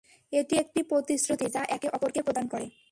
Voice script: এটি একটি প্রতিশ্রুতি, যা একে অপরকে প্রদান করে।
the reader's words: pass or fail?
pass